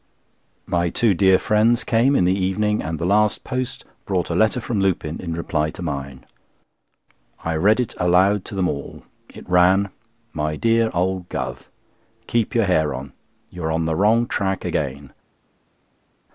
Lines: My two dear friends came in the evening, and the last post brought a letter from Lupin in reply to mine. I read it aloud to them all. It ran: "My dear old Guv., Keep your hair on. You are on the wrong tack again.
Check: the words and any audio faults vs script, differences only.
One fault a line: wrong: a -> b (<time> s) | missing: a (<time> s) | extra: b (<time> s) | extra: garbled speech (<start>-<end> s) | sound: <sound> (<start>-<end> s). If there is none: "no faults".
no faults